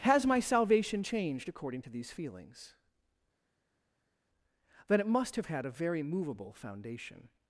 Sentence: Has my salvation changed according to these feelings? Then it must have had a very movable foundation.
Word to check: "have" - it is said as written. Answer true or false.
true